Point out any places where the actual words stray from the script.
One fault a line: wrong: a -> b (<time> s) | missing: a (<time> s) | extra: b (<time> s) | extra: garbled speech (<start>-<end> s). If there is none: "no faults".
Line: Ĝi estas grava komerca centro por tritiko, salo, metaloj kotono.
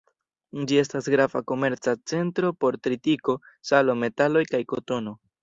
extra: kaj (4.5 s)